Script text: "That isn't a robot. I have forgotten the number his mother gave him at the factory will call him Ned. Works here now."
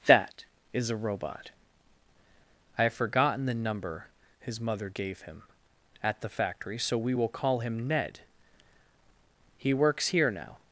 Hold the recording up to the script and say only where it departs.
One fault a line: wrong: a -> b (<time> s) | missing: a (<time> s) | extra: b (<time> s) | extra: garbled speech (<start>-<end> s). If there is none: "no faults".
wrong: isn't -> is (0.7 s)
extra: so we (6.8 s)
extra: He (9.6 s)